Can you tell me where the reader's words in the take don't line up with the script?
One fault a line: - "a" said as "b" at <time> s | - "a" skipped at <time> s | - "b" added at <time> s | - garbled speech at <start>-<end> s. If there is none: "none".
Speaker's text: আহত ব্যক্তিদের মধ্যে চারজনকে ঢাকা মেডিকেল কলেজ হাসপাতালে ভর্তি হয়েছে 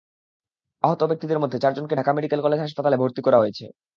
- "করা" added at 3.2 s